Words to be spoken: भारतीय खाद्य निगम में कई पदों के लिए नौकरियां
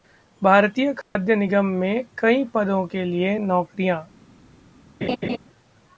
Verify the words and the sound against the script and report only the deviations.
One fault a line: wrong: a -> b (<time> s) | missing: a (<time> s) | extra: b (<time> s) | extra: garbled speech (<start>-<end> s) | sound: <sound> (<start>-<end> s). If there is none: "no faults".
sound: dropout (1.0-1.2 s)
sound: laugh (5.0-5.4 s)